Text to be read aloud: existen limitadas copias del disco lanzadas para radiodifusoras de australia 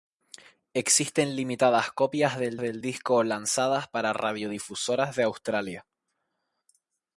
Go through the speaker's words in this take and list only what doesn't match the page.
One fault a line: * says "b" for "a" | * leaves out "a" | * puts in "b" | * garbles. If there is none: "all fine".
* puts in "del"